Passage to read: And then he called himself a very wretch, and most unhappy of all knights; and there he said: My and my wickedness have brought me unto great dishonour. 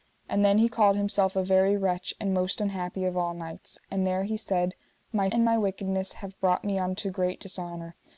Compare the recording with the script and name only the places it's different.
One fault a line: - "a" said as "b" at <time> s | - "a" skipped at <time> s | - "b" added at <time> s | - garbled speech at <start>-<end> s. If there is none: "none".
none